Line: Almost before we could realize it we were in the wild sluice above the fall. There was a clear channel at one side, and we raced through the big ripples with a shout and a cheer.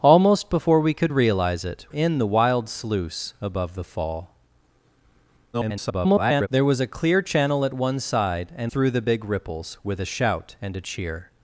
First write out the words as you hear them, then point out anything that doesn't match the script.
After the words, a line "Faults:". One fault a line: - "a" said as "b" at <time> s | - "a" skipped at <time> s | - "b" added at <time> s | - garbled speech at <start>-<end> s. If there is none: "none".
Almost before we could realize it in the wild sluice above the fall. [garbled] There was a clear channel at one side, and through the big ripples with a shout and a cheer.
Faults:
- "we were" skipped at 1.9 s
- garbled speech at 5.5-6.5 s
- "we raced" skipped at 8.7 s